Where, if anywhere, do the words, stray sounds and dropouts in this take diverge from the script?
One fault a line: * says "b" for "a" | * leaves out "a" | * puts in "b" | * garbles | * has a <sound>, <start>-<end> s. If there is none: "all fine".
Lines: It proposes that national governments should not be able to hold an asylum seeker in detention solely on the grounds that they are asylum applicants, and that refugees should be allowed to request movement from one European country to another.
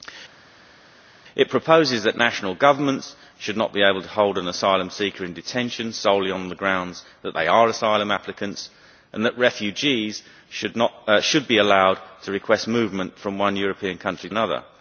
* leaves out "to"